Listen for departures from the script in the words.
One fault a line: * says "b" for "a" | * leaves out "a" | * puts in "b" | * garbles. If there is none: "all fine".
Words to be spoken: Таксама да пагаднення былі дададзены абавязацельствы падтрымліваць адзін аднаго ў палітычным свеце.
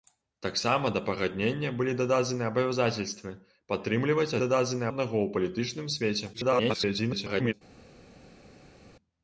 * says "дададзены" for "адзін"
* garbles